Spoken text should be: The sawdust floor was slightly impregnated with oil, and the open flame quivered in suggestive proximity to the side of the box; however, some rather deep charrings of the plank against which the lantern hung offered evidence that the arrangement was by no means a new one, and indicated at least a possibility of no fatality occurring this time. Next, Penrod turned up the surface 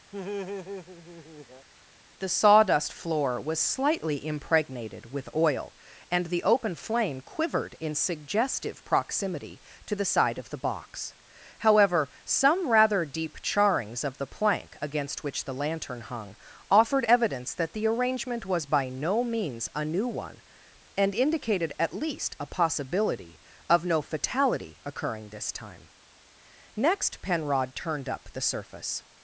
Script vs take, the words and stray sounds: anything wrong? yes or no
yes